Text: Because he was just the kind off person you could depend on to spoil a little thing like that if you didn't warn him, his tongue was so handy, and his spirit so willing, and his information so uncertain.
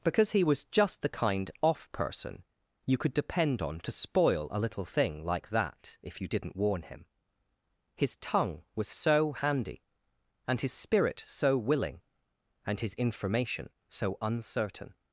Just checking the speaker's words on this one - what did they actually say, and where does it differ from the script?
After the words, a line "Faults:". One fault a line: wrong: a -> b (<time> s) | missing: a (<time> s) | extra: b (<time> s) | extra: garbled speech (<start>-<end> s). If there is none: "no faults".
Because he was just the kind off person you could depend on to spoil a little thing like that if you didn't warn him, his tongue was so handy, and his spirit so willing, and his information so uncertain.
Faults:
no faults